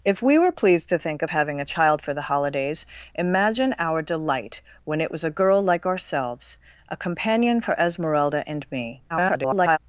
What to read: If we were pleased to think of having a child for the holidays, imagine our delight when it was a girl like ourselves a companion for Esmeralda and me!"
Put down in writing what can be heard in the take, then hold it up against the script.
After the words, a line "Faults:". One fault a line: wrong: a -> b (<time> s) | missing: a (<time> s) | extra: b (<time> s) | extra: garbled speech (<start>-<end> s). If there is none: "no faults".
If we were pleased to think of having a child for the holidays, imagine our delight when it was a girl like ourselves a companion for Esmeralda and me!" [garbled]
Faults:
extra: garbled speech (9.1-9.8 s)